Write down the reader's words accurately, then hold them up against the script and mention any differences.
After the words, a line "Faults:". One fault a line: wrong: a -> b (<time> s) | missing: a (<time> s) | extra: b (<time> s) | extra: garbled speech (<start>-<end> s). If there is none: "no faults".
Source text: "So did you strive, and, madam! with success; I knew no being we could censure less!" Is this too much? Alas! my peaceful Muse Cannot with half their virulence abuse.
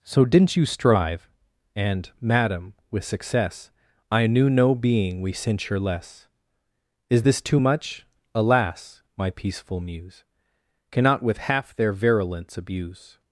"So didn't you strive, and, madam! with success; I knew no being we censure less!" Is this too much? Alas! my peaceful Muse Cannot with half their virulence abuse.
Faults:
wrong: did -> didn't (0.2 s)
missing: could (5.3 s)